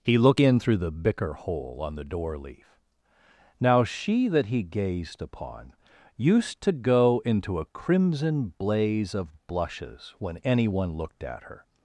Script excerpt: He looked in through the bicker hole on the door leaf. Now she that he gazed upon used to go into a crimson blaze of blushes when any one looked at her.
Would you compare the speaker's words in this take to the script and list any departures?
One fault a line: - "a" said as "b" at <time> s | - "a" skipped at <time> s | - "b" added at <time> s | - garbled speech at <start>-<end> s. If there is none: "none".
- "looked" said as "look" at 0.2 s